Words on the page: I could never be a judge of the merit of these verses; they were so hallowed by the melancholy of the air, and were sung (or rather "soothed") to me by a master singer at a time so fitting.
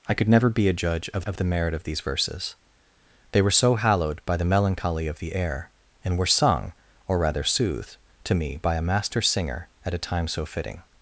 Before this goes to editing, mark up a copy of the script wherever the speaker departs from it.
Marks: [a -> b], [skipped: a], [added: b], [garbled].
I could never be a judge of [added: of] the merit of these verses; they were so hallowed by the melancholy of the air, and were sung (or rather "soothed") to me by a master singer at a time so fitting.